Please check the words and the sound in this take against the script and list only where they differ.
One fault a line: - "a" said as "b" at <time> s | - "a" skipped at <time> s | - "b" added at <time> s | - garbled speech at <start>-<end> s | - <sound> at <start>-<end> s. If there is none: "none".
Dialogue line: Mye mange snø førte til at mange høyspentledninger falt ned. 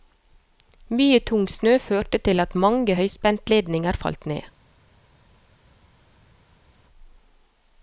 - "mange" said as "tung" at 1.2 s